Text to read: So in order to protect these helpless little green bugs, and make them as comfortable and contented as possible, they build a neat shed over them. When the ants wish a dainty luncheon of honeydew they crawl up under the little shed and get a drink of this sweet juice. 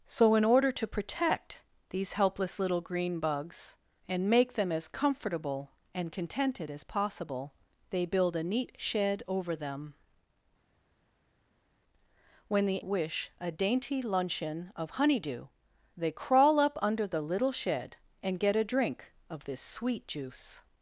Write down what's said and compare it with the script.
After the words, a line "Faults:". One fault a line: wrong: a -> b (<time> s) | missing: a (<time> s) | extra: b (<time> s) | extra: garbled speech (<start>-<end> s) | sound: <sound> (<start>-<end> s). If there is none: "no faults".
So in order to protect these helpless little green bugs, and make them as comfortable and contented as possible, they build a neat shed over them. When the wish a dainty luncheon of honeydew they crawl up under the little shed and get a drink of this sweet juice.
Faults:
missing: ants (12.8 s)